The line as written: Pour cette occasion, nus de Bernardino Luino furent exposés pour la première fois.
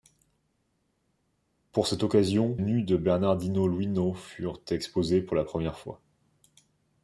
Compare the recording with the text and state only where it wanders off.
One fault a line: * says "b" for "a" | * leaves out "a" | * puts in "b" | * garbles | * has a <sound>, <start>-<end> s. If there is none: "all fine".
all fine